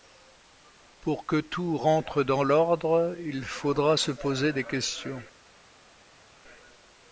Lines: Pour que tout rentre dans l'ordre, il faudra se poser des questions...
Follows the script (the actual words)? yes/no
yes